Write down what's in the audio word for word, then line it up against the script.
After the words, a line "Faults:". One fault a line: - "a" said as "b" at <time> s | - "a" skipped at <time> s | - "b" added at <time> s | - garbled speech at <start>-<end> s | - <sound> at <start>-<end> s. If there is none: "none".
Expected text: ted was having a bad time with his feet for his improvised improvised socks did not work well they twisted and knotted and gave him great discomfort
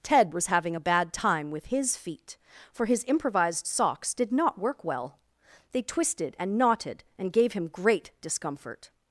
ted was having a bad time with his feet for his improvised socks did not work well they twisted and knotted and gave him great discomfort
Faults:
- "improvised" skipped at 3.7 s